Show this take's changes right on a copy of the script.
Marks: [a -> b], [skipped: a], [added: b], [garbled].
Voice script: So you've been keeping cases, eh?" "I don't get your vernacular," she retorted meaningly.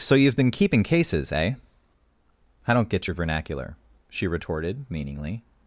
So you've been keeping cases, eh?" "I don't get your vernacular," she retorted meaningly.